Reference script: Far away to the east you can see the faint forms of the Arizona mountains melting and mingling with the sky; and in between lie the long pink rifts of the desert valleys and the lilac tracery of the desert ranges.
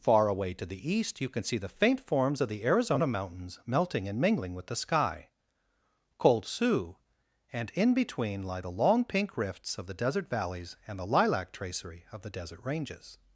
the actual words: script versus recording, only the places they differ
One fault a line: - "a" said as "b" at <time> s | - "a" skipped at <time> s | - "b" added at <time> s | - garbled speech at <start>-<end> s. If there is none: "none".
- "cold sioux" added at 6.2 s